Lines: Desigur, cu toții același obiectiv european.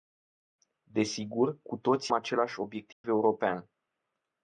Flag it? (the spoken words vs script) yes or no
no